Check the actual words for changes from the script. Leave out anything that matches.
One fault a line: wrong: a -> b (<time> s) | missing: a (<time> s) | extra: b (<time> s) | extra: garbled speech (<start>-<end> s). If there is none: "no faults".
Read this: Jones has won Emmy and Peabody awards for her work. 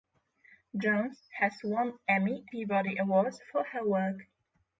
missing: and (2.5 s)